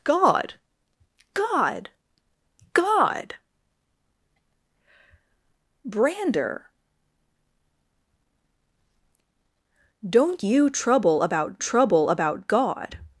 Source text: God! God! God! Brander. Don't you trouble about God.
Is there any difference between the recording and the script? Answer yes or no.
yes